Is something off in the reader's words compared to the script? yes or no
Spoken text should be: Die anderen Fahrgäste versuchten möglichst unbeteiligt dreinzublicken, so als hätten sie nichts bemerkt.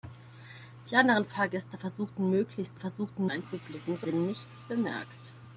yes